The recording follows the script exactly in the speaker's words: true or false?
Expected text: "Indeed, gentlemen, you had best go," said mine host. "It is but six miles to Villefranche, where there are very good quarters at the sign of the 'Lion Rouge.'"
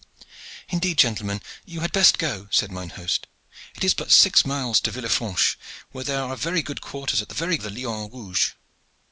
false